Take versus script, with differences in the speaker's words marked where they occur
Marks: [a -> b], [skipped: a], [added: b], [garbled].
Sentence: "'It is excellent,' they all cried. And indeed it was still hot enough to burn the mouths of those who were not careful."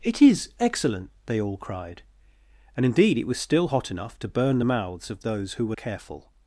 "'It is excellent,' they all cried. And indeed it was still hot enough to burn the mouths of those who were [skipped: not] careful."